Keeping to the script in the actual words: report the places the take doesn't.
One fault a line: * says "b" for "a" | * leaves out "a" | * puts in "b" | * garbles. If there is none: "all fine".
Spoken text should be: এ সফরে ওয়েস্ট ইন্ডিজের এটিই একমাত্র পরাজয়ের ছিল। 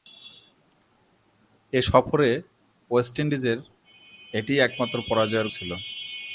all fine